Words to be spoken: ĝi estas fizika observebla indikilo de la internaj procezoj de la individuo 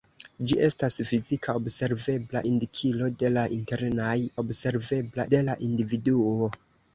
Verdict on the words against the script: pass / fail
fail